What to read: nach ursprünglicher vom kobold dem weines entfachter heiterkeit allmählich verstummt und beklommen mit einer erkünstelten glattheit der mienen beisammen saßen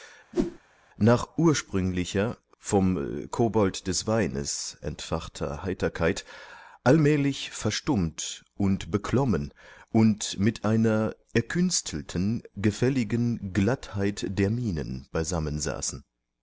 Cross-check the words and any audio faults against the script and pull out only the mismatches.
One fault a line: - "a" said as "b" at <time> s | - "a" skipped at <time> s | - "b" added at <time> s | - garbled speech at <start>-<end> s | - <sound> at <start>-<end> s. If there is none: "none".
- whoosh at 0.3-0.6 s
- "dem" said as "des" at 3.9 s
- "und" added at 9.9 s
- "gefälligen" added at 12.6 s